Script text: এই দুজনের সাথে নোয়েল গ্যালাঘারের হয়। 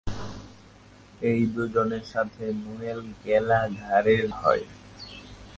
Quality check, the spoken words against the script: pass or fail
pass